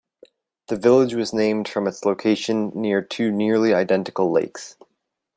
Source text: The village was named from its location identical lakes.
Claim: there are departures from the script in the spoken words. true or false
true